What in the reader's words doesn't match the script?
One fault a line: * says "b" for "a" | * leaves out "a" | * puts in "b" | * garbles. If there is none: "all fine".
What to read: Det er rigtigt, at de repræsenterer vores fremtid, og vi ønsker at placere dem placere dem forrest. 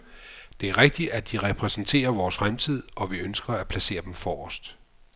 * leaves out "placere dem"